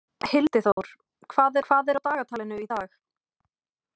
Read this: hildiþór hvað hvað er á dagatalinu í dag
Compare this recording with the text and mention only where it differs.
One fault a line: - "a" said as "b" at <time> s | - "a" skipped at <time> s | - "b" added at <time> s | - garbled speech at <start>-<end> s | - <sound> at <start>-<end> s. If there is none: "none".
- dropout at 0.7-0.8 s